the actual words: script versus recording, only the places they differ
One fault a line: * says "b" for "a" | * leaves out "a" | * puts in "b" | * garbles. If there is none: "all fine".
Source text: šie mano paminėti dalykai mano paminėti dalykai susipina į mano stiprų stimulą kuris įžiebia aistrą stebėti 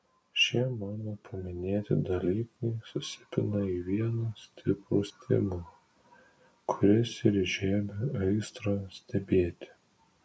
* leaves out "mano paminėti dalykai"
* says "vieną" for "mano"
* puts in "ir"